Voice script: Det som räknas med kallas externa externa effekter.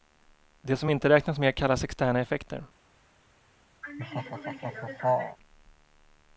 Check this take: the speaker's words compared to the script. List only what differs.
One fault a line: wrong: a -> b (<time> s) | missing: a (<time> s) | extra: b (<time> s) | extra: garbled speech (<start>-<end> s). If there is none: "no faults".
extra: inte (0.9 s)
missing: externa (2.2 s)